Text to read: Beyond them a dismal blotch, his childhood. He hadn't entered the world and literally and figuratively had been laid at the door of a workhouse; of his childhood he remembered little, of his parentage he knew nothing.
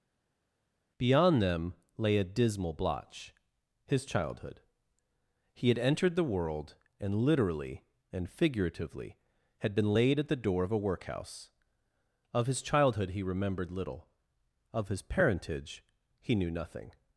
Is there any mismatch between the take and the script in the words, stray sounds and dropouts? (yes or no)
yes